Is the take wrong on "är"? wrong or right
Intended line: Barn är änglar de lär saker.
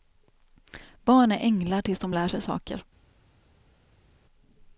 right